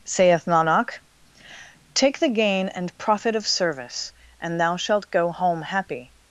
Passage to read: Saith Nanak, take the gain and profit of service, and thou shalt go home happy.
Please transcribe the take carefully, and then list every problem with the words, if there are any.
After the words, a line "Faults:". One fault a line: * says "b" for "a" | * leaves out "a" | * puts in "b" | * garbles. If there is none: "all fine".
Saith Nanak, take the gain and profit of service, and thou shalt go home happy.
Faults:
all fine